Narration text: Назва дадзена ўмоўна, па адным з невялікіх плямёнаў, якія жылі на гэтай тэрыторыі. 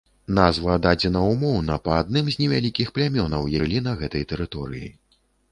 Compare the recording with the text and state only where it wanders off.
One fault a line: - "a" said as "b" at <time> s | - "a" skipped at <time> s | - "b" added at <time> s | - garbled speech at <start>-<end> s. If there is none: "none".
- "якія" skipped at 3.4 s